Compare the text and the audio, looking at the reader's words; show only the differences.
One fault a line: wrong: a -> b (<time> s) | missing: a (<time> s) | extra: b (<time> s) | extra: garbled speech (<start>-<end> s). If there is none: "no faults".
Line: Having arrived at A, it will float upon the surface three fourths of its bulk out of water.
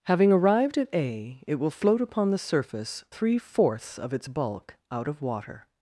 no faults